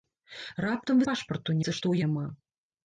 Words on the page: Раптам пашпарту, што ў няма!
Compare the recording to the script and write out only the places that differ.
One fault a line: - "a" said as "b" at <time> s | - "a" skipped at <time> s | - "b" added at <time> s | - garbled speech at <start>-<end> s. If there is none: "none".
none